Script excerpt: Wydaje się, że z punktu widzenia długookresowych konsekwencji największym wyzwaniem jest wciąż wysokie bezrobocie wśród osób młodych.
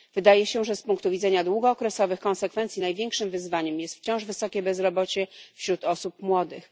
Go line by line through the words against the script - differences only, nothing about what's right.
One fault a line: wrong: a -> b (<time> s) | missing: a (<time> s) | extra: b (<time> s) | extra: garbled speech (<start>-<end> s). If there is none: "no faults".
no faults